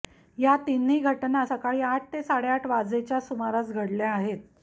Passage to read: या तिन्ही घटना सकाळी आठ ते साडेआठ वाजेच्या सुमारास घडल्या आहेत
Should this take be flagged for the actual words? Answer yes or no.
no